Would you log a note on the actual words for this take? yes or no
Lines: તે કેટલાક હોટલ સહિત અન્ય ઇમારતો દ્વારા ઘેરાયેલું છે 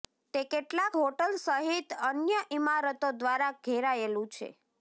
no